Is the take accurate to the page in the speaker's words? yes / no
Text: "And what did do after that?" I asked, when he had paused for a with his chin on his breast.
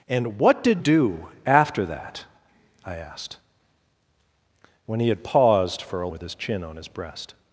yes